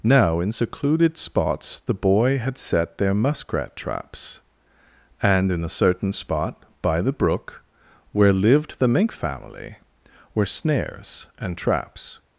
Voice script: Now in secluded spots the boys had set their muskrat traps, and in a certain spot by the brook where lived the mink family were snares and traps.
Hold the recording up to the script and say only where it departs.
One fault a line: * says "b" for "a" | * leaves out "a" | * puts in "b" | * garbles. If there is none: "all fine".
* says "boy" for "boys"